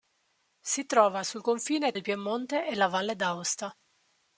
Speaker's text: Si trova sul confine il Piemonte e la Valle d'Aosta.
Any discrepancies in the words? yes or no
no